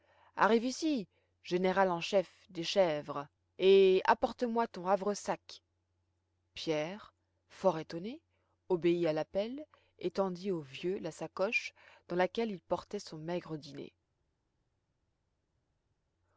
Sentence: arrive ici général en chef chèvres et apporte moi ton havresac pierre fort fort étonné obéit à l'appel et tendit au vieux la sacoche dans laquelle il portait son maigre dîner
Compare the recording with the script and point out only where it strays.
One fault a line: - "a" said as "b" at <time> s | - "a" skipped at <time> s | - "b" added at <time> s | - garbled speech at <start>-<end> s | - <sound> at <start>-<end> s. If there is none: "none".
- "des" added at 2.5 s
- "fort" skipped at 7.8 s